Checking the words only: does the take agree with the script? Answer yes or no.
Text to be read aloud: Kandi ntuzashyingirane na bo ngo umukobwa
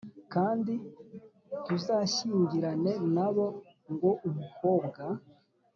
yes